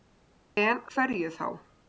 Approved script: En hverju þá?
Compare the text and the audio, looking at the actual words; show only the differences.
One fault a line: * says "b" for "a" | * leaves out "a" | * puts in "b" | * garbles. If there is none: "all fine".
all fine